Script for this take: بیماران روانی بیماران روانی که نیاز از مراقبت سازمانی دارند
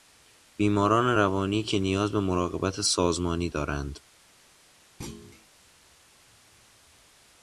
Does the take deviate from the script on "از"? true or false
true